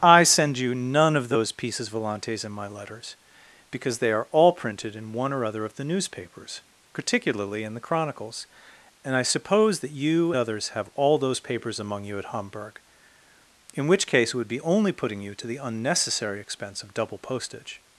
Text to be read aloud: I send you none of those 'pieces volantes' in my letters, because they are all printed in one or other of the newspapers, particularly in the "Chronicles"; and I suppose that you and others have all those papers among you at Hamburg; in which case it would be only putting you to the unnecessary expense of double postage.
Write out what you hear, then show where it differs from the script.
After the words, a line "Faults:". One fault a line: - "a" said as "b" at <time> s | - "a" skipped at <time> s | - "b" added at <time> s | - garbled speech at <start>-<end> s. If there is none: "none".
I send you none of those 'pieces volantes' in my letters, because they are all printed in one or other of the newspapers, particularly in the "Chronicles"; and I suppose that you others have all those papers among you at Hamburg; in which case it would be only putting you to the unnecessary expense of double postage.
Faults:
- "and" skipped at 10.3 s